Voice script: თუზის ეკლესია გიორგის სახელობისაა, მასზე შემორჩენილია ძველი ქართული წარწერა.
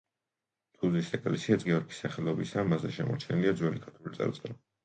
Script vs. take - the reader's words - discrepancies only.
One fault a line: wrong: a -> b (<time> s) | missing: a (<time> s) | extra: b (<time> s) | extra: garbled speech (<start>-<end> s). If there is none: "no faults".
no faults